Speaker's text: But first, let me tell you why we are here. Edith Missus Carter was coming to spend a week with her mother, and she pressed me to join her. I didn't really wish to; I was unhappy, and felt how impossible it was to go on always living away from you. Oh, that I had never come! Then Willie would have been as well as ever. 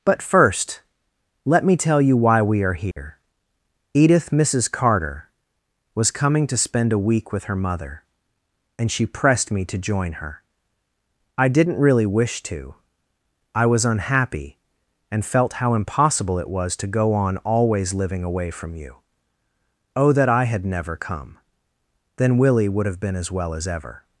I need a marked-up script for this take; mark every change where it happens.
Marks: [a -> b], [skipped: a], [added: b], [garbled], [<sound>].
But first, let me tell you why we are here. [dropout] Edith Missus Carter was coming to spend a week with her mother, and she pressed me to join her. I didn't really wish to; I was unhappy, and felt how impossible it was to go on always living away from you. Oh, that I had never come! Then Willie would have been as well as ever.